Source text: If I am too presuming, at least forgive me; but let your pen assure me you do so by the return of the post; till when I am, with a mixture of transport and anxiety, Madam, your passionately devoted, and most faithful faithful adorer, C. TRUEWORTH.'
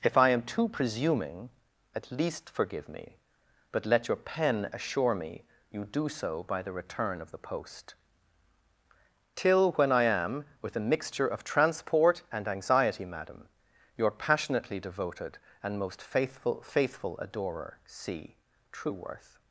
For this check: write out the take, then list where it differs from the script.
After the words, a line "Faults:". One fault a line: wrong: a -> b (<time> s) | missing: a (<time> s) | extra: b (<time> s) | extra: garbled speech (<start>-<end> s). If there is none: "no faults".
If I am too presuming, at least forgive me; but let your pen assure me you do so by the return of the post; till when I am, with a mixture of transport and anxiety, Madam, your passionately devoted, and most faithful faithful adorer, C. TRUEWORTH.'
Faults:
no faults